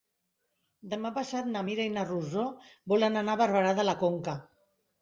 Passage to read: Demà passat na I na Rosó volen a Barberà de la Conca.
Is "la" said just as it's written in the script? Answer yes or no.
yes